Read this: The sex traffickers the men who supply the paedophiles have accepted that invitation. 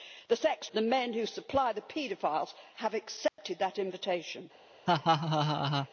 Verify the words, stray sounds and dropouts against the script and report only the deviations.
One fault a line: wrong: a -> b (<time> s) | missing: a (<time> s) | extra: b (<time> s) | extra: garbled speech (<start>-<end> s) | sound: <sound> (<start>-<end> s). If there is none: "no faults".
missing: traffickers (0.7 s)
sound: dropout (3.3-3.4 s)
sound: laugh (4.9-5.9 s)